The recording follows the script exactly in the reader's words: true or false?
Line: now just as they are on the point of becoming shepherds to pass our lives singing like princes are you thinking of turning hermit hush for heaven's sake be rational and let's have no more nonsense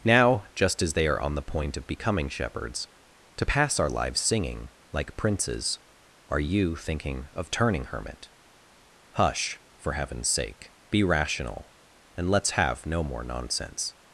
true